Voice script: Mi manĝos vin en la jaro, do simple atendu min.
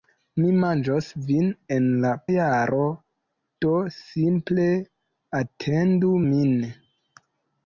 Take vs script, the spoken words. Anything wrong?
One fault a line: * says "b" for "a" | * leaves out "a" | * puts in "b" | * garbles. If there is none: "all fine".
all fine